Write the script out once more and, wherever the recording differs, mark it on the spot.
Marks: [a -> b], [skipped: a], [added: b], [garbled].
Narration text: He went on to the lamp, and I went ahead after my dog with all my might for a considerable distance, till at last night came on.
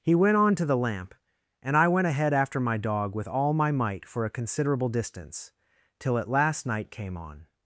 He went on to the lamp, and I went ahead after my dog with all my might for a considerable distance, till at last night came on.